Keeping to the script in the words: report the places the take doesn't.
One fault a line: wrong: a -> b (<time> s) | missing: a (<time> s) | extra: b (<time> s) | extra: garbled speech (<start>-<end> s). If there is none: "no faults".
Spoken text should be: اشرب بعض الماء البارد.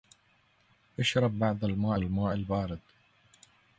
extra: الماء (2.0 s)